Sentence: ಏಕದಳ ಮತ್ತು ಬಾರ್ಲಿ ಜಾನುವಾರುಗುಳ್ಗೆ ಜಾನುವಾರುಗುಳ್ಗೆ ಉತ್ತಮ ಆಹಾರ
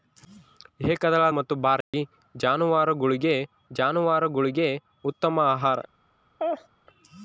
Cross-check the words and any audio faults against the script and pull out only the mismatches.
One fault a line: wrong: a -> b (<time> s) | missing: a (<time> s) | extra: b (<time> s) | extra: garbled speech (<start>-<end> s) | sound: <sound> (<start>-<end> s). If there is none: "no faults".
sound: dropout (1.8-1.9 s)
sound: laugh (6.4-6.7 s)